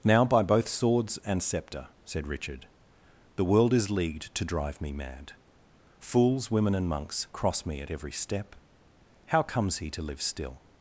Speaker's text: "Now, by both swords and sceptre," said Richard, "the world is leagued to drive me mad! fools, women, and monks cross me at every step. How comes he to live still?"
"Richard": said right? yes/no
yes